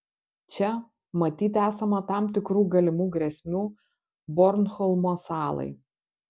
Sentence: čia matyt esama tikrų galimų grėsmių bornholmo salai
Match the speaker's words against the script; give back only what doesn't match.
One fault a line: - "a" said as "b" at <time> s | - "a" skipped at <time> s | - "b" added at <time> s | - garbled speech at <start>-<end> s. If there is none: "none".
- "tam" added at 2.1 s